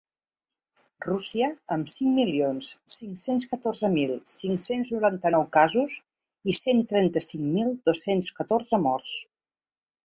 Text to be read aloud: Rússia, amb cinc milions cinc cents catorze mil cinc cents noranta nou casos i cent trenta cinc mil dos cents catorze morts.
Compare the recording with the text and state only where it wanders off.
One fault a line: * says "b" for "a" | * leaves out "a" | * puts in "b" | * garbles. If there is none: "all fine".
all fine